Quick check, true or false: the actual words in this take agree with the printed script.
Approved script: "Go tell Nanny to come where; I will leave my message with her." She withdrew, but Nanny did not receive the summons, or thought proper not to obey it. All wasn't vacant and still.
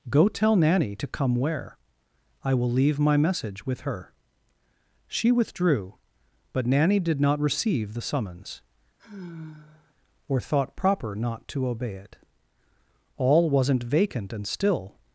true